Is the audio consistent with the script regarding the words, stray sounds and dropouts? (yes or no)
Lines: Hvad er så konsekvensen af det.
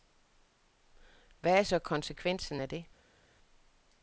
yes